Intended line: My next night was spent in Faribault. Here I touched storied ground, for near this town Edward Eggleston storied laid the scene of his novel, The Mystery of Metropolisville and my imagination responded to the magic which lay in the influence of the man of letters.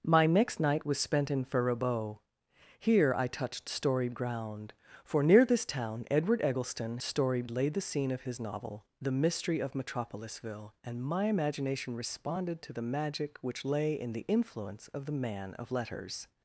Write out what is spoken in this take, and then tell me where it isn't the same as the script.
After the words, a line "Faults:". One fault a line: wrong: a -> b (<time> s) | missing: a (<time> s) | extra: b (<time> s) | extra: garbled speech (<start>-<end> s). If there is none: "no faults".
My next night was spent in Faribault. Here I touched storied ground, for near this town Edward Eggleston storied laid the scene of his novel, The Mystery of Metropolisville and my imagination responded to the magic which lay in the influence of the man of letters.
Faults:
no faults